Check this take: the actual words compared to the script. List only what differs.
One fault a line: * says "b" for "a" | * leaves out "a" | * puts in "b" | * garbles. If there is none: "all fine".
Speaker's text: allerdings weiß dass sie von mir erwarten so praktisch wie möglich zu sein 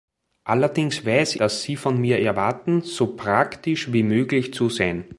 all fine